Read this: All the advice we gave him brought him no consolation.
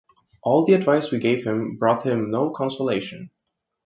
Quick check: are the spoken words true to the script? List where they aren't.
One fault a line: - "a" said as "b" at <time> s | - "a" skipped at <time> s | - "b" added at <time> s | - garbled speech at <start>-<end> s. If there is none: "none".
none